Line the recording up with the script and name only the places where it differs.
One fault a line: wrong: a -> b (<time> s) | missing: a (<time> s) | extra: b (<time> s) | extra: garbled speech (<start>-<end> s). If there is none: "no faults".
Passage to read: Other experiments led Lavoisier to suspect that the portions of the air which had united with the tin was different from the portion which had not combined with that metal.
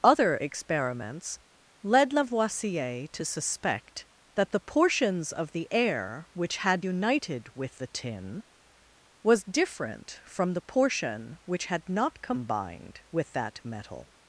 no faults